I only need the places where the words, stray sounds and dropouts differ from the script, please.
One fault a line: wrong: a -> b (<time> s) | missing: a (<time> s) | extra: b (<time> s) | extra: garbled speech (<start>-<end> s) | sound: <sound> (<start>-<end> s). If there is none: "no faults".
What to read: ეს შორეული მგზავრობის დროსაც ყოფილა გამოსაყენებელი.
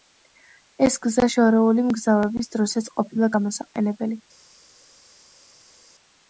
extra: გზა (1.0 s)